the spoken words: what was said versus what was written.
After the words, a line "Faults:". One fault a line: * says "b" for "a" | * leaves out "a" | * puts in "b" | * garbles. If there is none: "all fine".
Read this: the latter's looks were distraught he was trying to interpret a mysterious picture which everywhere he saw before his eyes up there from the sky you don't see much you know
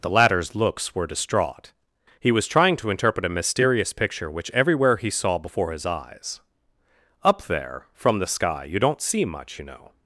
the latter's looks were distraught he was trying to interpret a mysterious picture which everywhere he saw before his eyes up there from the sky you don't see much you know
Faults:
all fine